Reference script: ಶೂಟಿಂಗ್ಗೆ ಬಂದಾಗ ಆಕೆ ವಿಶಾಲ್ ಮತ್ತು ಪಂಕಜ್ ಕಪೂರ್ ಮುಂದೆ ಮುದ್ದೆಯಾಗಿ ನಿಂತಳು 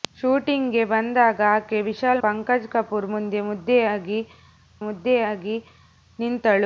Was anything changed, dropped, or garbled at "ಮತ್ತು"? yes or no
yes